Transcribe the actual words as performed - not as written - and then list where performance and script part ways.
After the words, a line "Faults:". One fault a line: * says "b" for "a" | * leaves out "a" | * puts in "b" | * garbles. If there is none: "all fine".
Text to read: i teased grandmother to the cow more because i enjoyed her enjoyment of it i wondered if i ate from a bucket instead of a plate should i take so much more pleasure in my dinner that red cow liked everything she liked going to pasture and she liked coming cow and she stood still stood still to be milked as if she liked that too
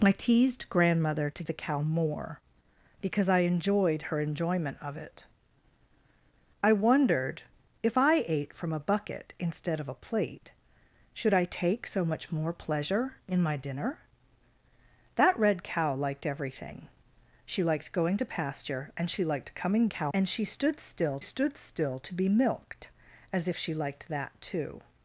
i teased grandmother to the cow more because i enjoyed her enjoyment of it i wondered if i ate from a bucket instead of a plate should i take so much more pleasure in my dinner that red cow liked everything she liked going to pasture and she liked coming cow and she stood still stood still to be milked as if she liked that too
Faults:
all fine